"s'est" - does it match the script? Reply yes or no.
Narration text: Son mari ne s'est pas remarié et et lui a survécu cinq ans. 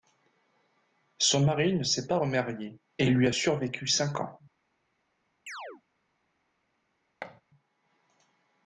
yes